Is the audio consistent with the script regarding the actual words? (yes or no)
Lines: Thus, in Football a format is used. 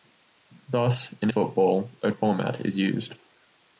yes